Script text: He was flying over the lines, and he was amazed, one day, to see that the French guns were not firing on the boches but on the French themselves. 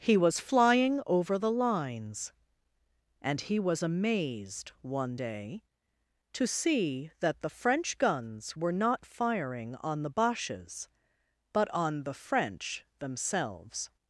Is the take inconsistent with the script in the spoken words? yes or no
no